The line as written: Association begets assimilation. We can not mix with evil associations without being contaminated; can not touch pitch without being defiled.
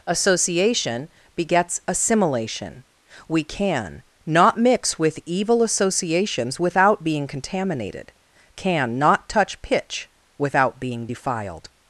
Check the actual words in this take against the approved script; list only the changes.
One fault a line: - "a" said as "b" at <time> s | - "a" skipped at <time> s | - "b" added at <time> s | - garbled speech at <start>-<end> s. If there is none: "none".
none